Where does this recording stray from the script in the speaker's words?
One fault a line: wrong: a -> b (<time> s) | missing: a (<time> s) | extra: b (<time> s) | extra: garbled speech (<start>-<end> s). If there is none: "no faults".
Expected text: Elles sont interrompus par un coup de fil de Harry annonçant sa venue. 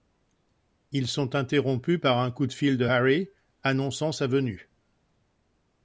wrong: Elles -> Ils (0.9 s)